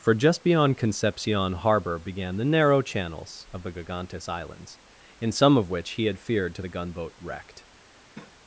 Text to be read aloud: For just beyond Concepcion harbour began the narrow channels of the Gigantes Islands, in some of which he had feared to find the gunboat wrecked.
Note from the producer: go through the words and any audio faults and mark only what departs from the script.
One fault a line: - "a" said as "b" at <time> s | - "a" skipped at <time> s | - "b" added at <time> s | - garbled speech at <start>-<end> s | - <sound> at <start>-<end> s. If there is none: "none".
- "find" skipped at 6.6 s
- cough at 8.1-8.4 s